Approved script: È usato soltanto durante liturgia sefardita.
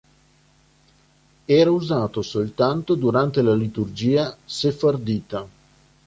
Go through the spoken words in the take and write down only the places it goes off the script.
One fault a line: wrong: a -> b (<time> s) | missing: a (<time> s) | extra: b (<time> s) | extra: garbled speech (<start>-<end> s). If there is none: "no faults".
wrong: È -> Era (1.4 s)
extra: la (3.4 s)